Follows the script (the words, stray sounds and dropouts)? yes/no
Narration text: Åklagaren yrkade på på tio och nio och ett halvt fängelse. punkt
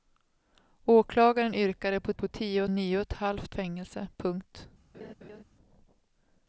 no